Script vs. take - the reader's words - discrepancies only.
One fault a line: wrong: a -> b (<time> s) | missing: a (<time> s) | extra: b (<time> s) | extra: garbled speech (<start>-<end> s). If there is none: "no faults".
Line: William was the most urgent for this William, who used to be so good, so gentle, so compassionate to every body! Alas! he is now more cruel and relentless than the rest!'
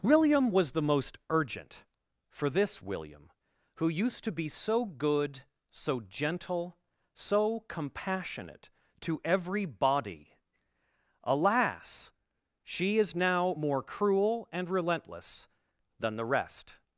wrong: he -> she (12.6 s)